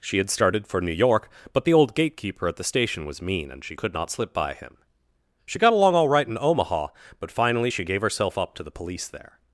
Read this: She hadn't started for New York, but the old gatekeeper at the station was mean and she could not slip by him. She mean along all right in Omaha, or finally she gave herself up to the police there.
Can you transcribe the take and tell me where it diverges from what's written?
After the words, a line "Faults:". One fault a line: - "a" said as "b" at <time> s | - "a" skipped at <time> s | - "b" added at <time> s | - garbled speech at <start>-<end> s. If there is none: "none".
She had started for New York, but the old gatekeeper at the station was mean and she could not slip by him. She got along all right in Omaha, but finally she gave herself up to the police there.
Faults:
- "hadn't" said as "had" at 0.2 s
- "mean" said as "got" at 5.6 s
- "or" said as "but" at 7.2 s